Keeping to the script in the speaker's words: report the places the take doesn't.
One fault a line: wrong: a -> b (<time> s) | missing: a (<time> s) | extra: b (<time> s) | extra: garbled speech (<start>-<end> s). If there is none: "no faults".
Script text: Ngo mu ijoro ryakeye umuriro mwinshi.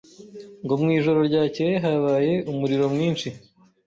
extra: habaye (1.8 s)